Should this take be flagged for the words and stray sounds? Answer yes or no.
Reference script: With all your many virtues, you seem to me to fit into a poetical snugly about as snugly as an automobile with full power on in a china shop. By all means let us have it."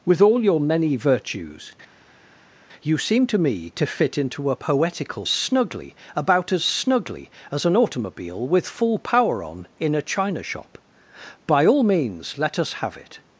no